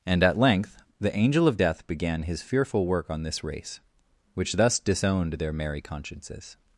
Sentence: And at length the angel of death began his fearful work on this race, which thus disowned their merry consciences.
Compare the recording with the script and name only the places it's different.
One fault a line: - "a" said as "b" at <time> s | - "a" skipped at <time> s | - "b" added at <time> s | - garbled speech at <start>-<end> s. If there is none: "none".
none